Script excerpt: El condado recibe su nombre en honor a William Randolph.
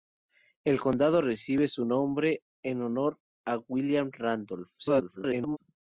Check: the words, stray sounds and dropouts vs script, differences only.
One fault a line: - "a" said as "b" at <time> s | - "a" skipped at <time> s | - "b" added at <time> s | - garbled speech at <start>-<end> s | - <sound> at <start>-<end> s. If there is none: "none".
- garbled speech at 4.8-5.6 s